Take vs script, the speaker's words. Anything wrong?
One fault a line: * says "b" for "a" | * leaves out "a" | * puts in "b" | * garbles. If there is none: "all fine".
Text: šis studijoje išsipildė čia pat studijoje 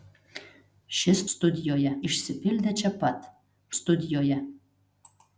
all fine